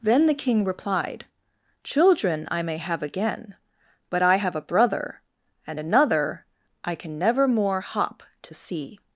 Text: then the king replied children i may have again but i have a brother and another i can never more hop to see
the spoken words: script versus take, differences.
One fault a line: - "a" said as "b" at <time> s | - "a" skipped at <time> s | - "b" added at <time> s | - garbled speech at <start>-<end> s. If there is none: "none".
none